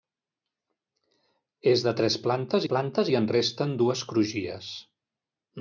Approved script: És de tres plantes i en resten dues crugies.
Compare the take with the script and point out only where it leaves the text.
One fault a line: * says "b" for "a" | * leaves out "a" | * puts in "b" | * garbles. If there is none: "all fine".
* puts in "plantes"